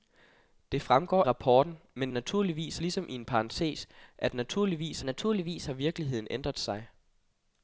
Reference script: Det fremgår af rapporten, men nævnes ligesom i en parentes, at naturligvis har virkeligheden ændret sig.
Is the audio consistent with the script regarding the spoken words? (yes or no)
no